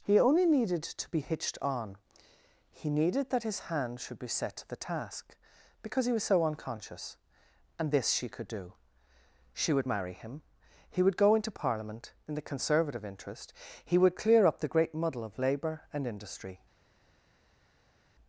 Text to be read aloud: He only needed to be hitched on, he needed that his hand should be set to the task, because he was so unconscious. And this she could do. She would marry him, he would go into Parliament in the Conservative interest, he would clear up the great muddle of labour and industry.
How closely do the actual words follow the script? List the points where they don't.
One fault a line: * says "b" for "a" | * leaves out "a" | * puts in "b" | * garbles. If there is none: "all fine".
all fine